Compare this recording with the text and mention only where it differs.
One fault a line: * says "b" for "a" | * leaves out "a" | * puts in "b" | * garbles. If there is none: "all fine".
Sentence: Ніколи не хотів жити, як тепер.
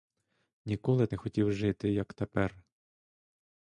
all fine